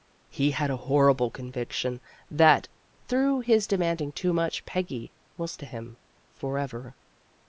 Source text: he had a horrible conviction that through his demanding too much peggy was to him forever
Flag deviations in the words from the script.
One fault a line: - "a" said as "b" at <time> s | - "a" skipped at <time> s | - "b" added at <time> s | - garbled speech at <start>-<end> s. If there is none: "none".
none